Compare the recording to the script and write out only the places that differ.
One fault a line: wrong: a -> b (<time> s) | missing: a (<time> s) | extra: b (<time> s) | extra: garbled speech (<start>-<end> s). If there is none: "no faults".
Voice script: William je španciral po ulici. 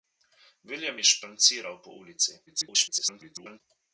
extra: garbled speech (2.5-3.6 s)